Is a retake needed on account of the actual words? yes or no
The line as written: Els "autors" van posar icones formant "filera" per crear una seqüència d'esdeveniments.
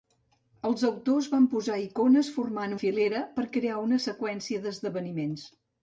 no